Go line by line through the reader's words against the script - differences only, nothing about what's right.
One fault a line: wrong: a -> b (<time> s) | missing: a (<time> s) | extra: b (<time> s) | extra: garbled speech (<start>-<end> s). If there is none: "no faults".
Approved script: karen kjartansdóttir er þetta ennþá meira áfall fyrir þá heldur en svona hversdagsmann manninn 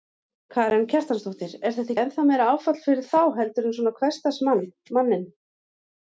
no faults